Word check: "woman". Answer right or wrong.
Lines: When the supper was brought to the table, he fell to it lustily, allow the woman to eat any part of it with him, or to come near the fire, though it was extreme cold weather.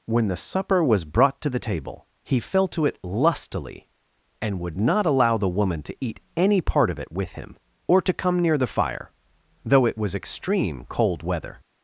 right